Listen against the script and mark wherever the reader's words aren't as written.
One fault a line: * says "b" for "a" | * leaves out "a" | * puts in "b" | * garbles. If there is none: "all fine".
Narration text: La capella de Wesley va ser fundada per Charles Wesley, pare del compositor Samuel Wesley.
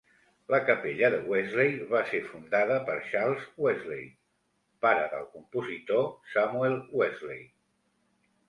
all fine